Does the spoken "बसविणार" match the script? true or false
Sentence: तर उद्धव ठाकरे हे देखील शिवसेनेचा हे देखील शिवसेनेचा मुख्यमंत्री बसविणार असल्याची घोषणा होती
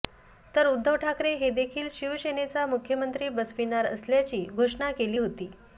true